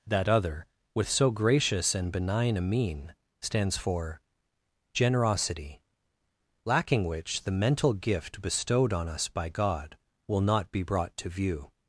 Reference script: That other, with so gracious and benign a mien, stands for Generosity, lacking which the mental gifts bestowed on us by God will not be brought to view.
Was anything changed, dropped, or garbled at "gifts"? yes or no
yes